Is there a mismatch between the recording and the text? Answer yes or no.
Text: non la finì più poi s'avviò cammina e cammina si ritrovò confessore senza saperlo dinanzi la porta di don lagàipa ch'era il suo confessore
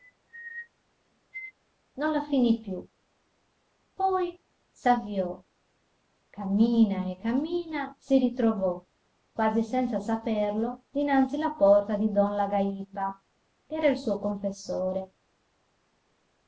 yes